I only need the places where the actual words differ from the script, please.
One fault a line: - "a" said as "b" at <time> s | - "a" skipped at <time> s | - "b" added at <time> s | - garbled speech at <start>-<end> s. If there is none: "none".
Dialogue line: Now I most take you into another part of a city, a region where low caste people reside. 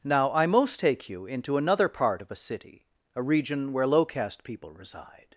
none